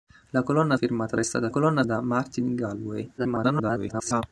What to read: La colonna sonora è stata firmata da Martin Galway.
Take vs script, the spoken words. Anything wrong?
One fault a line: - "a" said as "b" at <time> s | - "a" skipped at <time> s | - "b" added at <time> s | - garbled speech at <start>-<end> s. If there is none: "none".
- "sonora" said as "firmata" at 0.7 s
- "firmata" said as "colonna" at 1.5 s
- garbled speech at 3.2-4.2 s